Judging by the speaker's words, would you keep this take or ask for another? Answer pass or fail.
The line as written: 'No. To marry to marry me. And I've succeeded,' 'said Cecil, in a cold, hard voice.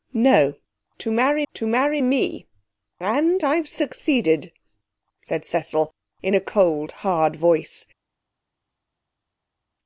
pass